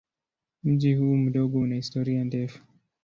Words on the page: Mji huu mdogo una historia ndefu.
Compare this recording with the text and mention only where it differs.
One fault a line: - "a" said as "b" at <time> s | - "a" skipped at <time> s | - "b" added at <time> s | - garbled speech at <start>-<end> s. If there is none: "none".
none